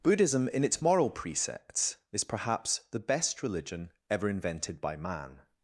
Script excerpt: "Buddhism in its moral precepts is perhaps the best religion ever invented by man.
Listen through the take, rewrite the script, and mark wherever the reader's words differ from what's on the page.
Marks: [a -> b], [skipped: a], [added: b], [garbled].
"Buddhism in its moral precepts is perhaps the best religion ever invented by man.